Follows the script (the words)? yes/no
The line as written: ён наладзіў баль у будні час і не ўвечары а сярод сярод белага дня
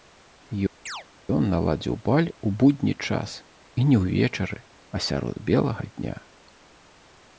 no